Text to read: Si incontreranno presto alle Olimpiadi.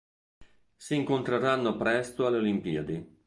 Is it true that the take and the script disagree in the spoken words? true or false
false